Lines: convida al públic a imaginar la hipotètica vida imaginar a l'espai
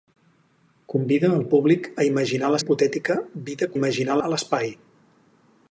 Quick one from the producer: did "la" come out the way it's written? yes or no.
yes